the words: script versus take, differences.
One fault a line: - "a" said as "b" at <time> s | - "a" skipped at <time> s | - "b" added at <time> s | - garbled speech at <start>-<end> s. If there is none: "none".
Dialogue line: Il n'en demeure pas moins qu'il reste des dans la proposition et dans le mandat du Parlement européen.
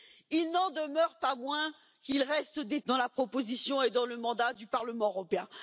none